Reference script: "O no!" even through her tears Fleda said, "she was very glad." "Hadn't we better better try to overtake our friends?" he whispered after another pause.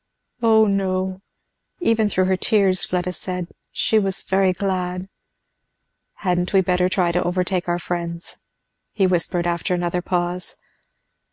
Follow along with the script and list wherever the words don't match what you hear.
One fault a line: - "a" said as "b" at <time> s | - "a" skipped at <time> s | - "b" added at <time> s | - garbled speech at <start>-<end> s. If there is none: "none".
- "better" skipped at 6.9 s